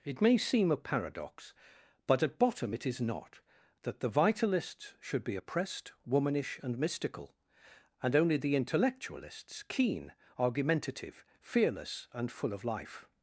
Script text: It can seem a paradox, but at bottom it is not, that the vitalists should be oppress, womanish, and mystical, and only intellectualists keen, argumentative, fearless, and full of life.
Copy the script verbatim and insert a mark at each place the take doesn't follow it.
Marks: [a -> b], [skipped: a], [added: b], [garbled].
It [can -> may] seem a paradox, but at bottom it is not, that the vitalists should be [oppress, -> oppressed] womanish, and mystical, and only [added: the] intellectualists keen, argumentative, fearless, and full of life.